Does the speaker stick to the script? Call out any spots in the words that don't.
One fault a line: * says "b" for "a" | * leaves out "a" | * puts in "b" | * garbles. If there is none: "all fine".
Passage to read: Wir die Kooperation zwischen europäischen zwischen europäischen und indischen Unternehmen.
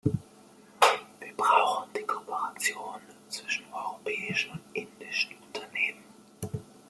* puts in "brauchen"
* leaves out "zwischen europäischen"